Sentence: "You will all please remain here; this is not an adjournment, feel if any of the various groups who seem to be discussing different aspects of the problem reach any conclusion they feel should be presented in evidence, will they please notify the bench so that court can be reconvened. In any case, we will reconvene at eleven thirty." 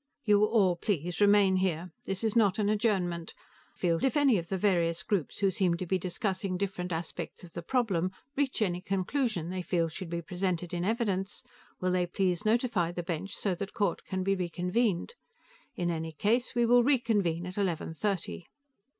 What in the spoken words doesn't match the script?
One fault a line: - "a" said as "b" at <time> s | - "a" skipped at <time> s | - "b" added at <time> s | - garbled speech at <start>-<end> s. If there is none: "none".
none